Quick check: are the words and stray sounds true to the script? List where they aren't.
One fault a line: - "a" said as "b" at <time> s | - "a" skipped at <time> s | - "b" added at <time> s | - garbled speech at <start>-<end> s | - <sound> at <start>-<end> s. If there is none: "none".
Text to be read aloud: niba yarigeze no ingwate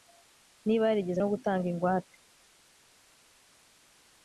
- "gutanga" added at 1.3 s